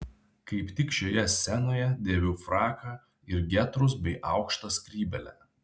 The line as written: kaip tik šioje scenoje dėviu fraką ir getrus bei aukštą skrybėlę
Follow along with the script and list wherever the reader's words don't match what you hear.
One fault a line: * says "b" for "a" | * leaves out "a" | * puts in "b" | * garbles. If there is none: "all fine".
all fine